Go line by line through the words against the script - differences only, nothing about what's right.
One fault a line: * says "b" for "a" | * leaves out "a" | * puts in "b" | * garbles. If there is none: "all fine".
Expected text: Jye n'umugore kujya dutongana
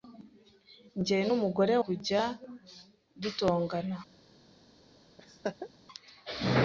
all fine